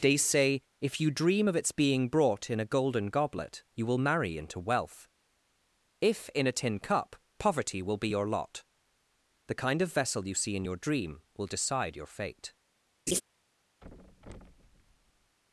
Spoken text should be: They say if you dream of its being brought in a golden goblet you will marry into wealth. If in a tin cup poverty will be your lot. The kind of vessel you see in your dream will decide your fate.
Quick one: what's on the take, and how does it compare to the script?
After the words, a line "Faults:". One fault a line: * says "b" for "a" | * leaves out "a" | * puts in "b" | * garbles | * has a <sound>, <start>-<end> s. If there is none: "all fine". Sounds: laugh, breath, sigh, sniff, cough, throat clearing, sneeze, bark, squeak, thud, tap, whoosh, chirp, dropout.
They say if you dream of its being brought in a golden goblet you will marry into wealth. If in a tin cup poverty will be your lot. The kind of vessel you see in your dream will decide your fate.
Faults:
* has a laugh, 13.1-13.2 s
* has a thud, 13.8-15.4 s